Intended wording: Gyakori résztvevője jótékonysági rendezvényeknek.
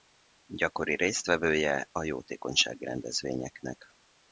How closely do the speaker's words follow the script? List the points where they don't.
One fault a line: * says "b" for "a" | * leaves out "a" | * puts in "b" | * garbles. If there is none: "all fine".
* puts in "a"